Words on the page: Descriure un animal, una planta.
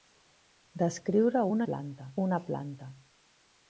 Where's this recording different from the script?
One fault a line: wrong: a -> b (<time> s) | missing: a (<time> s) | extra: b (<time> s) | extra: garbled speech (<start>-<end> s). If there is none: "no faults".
wrong: animal -> planta (1.6 s)